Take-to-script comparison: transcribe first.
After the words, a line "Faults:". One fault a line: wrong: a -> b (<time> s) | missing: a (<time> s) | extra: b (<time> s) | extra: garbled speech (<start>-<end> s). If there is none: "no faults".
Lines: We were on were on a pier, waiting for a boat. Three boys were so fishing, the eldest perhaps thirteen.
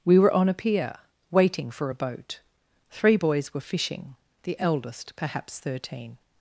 We were on a pier, waiting for a boat. Three boys were fishing, the eldest perhaps thirteen.
Faults:
missing: were on (0.5 s)
missing: so (3.6 s)